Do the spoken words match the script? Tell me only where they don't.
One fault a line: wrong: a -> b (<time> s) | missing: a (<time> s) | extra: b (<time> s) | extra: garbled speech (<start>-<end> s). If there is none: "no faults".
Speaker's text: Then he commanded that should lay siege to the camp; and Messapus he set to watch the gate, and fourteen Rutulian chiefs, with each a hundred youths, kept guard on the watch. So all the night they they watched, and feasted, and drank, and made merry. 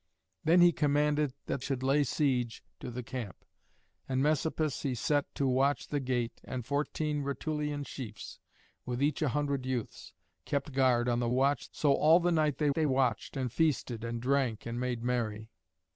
no faults